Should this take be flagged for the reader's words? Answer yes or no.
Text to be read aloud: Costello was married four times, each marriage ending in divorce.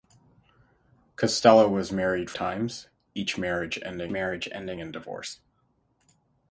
yes